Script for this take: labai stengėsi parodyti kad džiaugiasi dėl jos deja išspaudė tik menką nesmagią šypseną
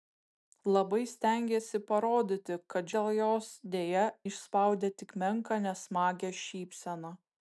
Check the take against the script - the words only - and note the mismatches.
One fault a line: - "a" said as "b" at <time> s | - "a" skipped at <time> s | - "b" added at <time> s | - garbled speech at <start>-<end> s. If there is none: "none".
- "džiaugiasi" skipped at 2.9 s